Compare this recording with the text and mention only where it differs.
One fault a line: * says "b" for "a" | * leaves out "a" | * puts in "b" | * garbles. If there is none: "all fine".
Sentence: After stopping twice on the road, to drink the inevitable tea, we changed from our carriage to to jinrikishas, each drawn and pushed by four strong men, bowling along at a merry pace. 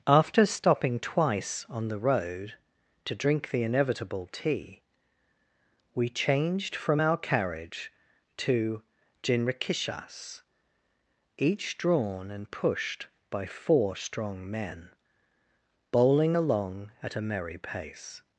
* leaves out "to"